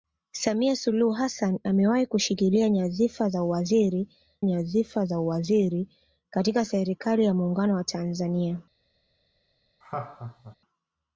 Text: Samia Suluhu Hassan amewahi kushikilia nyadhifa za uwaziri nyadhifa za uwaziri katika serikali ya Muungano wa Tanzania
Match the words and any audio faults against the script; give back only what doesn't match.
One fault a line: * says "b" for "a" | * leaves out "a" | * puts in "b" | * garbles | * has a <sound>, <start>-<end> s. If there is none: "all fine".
* has a laugh, 9.8-10.6 s